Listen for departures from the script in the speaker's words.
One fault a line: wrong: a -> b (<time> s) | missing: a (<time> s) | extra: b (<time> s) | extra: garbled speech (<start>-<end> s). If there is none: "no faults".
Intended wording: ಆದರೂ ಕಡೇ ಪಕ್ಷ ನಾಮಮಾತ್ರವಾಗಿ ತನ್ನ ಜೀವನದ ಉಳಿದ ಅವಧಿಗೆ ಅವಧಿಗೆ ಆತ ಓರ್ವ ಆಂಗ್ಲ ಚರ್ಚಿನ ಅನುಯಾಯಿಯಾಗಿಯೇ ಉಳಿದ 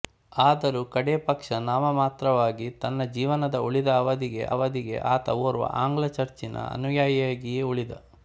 no faults